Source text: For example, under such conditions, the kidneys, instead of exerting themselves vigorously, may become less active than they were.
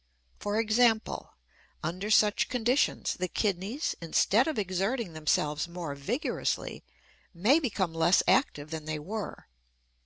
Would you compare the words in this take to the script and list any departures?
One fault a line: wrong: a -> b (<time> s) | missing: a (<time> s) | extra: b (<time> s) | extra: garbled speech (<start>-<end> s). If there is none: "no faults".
extra: more (5.7 s)